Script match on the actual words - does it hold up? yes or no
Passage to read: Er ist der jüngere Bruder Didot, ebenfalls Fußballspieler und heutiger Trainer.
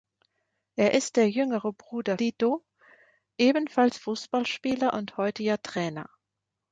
yes